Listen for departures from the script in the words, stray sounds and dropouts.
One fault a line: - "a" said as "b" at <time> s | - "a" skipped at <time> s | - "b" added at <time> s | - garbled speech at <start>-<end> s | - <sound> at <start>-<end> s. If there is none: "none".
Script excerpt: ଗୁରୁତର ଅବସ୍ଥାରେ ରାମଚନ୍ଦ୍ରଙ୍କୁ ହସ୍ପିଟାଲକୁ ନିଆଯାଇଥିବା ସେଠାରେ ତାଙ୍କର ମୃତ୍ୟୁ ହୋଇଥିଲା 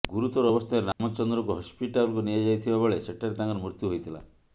- dropout at 0.9-1.0 s
- "ବେଳେ" added at 2.8 s